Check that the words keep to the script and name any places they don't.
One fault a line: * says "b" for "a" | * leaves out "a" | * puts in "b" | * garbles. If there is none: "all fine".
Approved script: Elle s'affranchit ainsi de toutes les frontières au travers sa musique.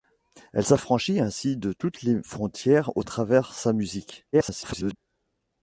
* garbles